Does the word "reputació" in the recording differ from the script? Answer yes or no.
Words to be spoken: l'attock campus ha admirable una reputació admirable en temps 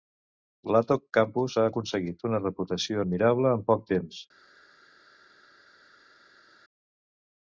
no